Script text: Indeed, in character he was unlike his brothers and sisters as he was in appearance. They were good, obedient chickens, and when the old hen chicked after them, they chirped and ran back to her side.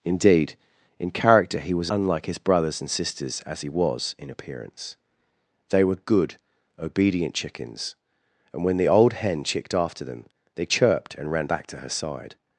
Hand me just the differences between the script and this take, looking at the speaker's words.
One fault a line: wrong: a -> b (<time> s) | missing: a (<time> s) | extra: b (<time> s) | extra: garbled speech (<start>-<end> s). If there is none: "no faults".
no faults